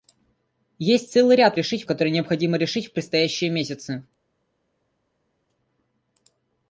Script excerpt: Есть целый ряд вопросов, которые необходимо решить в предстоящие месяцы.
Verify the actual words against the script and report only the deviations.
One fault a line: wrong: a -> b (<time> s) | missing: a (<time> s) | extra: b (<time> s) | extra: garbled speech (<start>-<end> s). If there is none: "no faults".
wrong: вопросов -> решить (1.5 s)